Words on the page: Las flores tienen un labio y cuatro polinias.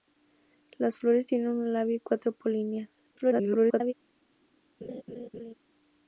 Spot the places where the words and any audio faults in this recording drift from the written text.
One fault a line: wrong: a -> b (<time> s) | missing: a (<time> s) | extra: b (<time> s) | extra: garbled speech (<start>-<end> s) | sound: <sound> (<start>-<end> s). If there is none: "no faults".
extra: garbled speech (3.1-3.9 s)
sound: laugh (4.8-5.5 s)